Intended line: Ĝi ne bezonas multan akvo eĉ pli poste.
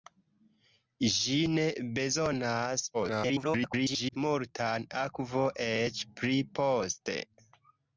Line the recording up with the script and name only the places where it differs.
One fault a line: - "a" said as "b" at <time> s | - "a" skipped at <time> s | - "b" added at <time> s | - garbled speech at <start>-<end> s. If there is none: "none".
- garbled speech at 2.9-4.2 s